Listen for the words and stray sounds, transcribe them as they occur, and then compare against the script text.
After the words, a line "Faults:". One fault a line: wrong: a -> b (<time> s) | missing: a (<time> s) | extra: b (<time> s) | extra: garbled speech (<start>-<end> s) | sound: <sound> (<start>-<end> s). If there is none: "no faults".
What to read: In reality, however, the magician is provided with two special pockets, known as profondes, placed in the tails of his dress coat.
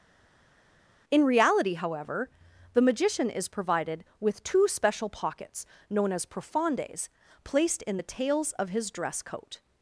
In reality, however, the magician is provided with two special pockets, known as profondes, placed in the tails of his dress coat.
Faults:
no faults